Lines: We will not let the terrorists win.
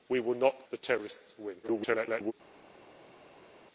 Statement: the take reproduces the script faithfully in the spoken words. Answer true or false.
false